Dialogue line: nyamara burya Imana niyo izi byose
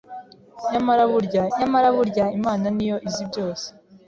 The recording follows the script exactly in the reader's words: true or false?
false